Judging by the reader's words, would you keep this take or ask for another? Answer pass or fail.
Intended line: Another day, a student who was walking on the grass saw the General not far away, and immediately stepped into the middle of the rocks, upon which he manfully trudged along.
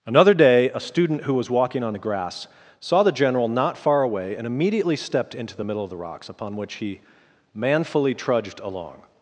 pass